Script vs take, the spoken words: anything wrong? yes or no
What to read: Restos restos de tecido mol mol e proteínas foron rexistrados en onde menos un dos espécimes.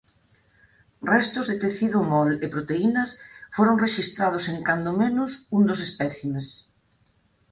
yes